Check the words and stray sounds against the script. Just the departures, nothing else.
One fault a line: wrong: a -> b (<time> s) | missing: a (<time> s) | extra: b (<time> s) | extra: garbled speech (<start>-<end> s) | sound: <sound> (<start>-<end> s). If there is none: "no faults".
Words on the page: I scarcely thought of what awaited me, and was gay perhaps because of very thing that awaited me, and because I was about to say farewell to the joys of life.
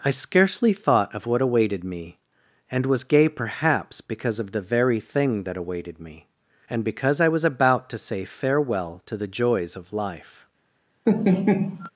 extra: the (4.5 s)
sound: laugh (11.1-11.9 s)